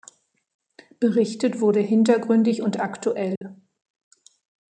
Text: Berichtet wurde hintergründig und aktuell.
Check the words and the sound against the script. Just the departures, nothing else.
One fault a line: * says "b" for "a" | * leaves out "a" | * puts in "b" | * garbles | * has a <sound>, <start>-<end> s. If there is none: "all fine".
* has a dropout, 3.4-3.4 s